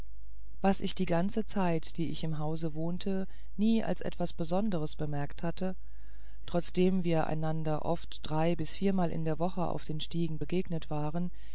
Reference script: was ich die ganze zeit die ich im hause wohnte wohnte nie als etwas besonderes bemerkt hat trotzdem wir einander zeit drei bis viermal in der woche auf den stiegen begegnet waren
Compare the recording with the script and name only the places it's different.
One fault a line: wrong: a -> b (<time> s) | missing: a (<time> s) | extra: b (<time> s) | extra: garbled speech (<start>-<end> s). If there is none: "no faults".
missing: wohnte (3.3 s)
wrong: hat -> hatte (5.4 s)
wrong: zeit -> oft (7.8 s)